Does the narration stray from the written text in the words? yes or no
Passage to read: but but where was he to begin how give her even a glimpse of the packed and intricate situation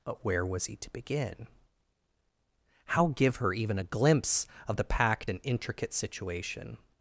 yes